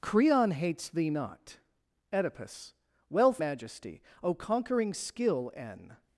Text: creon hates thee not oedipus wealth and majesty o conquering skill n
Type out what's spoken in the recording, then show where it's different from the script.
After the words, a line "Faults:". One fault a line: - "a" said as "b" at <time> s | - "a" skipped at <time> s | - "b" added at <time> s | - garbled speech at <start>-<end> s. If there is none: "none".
creon hates thee not oedipus wealth majesty o conquering skill n
Faults:
- "and" skipped at 3.4 s